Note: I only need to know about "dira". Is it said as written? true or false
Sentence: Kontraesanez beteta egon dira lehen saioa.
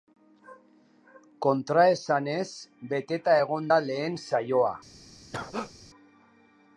false